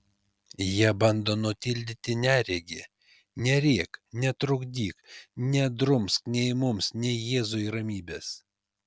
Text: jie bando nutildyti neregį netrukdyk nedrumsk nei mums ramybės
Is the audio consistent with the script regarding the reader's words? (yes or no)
no